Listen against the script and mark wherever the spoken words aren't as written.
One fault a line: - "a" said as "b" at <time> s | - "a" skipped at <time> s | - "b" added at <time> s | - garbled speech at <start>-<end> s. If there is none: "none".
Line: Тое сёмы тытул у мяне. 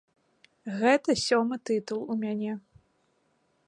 - "Тое" said as "Гэта" at 0.8 s